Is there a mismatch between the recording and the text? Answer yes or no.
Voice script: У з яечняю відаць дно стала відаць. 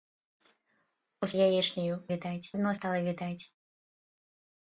no